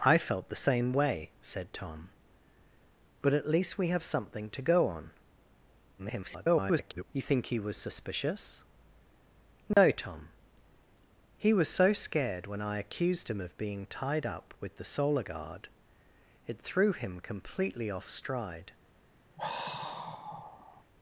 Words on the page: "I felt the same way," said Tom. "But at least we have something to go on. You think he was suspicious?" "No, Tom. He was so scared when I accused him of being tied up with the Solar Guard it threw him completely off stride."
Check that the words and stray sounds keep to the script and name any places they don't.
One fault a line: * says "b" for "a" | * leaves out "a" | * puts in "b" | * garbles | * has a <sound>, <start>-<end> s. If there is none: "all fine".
* garbles
* has a dropout, 9.7-9.8 s
* has a sigh, 19.4-20.8 s